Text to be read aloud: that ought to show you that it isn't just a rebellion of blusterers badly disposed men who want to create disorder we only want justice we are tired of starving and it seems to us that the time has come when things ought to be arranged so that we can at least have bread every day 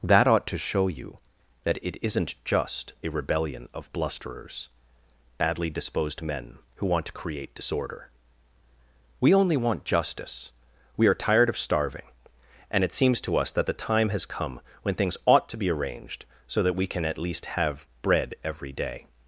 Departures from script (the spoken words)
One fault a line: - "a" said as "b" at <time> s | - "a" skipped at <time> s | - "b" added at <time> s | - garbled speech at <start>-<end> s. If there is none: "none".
none